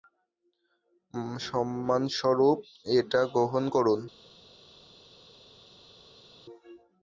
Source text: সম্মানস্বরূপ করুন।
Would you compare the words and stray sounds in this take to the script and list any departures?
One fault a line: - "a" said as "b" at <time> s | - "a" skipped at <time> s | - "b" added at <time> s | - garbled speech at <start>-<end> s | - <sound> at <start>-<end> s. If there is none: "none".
- "এটা গ্রহণ" added at 3.0 s